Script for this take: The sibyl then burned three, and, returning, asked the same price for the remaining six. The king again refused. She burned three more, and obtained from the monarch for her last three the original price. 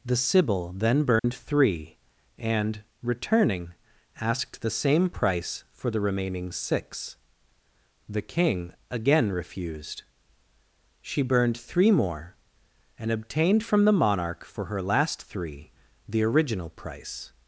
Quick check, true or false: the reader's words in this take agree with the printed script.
true